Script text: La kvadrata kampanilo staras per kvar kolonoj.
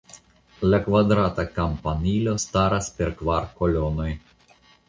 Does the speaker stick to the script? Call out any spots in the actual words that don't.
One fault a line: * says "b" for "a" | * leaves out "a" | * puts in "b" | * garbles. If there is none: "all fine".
all fine